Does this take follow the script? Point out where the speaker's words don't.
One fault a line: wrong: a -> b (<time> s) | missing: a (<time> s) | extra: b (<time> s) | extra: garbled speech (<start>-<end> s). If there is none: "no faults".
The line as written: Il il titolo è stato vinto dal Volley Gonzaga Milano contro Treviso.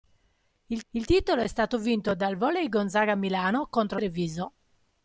no faults